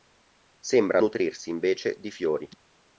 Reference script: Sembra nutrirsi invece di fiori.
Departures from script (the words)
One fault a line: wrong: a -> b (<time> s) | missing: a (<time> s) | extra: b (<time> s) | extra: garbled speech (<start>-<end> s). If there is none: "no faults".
no faults